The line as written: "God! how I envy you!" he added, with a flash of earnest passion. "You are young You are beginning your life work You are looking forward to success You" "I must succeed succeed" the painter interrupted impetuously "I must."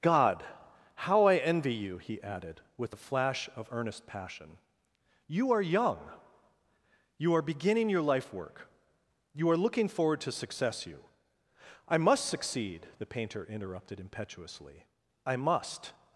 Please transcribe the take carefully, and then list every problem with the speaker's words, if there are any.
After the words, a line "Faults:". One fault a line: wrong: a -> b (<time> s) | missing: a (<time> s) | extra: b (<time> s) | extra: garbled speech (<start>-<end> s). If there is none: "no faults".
"God! how I envy you!" he added, with a flash of earnest passion. "You are young You are beginning your life work You are looking forward to success You" "I must succeed" the painter interrupted impetuously "I must."
Faults:
missing: succeed (12.9 s)